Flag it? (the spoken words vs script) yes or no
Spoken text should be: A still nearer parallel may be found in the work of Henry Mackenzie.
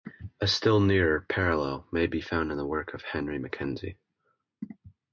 no